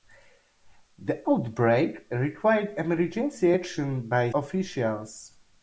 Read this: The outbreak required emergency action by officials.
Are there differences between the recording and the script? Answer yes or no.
no